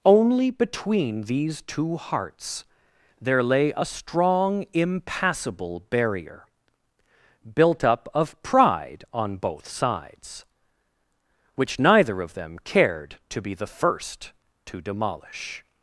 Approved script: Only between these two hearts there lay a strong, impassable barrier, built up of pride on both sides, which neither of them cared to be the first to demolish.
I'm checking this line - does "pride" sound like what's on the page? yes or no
yes